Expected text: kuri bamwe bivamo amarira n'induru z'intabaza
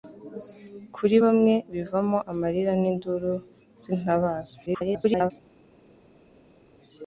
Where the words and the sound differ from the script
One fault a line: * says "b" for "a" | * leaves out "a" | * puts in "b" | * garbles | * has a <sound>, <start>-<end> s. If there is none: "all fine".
* garbles